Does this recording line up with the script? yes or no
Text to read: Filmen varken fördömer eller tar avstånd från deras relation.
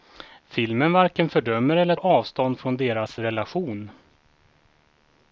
no